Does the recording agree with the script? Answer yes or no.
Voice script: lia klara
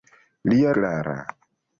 yes